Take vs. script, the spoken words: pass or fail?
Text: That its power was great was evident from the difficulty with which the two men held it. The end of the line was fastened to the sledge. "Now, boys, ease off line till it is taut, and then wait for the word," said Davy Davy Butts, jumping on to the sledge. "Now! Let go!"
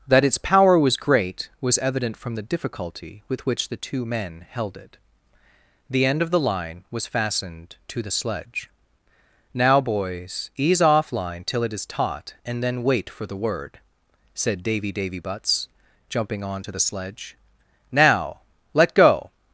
pass